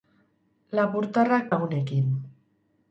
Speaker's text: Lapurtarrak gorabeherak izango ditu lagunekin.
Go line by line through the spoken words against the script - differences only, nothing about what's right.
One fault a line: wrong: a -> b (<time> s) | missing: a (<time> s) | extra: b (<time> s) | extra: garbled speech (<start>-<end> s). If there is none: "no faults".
missing: gorabeherak izango ditu (1.5 s)